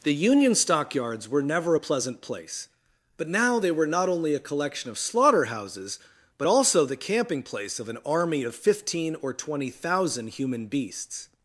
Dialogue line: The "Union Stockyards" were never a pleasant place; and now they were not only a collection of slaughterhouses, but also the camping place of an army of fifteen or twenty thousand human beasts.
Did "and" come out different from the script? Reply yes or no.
yes